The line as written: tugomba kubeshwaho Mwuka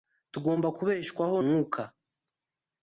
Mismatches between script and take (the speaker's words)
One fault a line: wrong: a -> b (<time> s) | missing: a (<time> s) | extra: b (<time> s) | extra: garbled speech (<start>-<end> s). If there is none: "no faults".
no faults